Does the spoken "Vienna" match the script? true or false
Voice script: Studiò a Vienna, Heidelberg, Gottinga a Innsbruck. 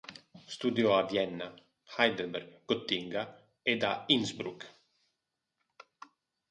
true